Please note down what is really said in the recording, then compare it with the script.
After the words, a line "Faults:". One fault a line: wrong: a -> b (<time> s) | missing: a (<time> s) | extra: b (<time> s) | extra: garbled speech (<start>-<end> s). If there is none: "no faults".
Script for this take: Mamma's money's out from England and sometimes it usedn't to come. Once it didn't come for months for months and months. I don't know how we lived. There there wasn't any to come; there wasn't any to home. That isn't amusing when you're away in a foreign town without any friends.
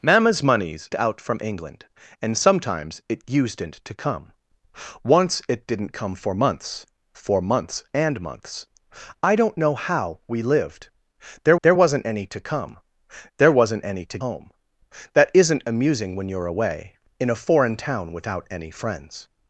Mamma's money's out from England and sometimes it usedn't to come. Once it didn't come for months for months and months. I don't know how we lived. There there wasn't any to come; there wasn't any to home. That isn't amusing when you're away in a foreign town without any friends.
Faults:
no faults